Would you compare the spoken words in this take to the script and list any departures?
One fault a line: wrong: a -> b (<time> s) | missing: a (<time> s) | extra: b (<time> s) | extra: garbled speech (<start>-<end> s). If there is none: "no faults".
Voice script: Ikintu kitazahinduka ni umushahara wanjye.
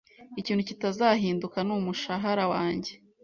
no faults